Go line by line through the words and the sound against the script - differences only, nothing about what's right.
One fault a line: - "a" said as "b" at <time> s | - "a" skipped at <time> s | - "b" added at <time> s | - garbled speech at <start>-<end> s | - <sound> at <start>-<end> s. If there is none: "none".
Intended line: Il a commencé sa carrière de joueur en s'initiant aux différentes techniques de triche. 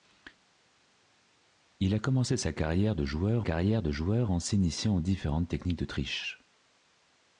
- "carrière de joueur" added at 3.4 s